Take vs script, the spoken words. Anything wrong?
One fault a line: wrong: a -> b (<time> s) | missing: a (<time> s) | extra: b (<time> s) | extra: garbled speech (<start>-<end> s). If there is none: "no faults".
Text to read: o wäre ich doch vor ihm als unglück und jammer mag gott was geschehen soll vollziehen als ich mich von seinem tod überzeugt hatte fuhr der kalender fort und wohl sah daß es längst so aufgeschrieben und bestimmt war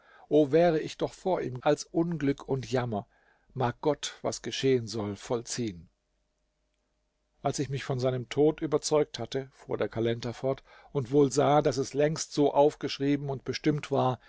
no faults